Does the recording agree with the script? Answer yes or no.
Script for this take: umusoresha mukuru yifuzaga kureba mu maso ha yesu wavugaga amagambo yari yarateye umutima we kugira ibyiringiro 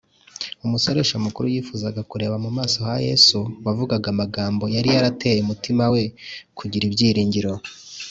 yes